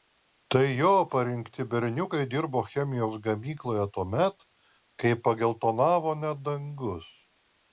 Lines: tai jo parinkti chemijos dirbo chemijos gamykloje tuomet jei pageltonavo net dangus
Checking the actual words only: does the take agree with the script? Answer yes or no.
no